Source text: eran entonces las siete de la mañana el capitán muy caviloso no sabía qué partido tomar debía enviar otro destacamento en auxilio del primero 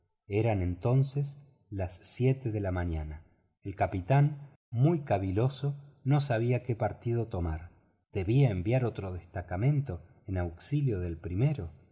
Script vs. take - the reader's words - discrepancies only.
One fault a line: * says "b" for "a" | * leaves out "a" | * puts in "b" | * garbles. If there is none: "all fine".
all fine